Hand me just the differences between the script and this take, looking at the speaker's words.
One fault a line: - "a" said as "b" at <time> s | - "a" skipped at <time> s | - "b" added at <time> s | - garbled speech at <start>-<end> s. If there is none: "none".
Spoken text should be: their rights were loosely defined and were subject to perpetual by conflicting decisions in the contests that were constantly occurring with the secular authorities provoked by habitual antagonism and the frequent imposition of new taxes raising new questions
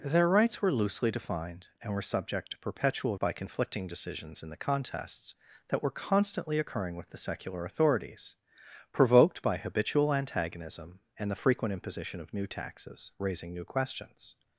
none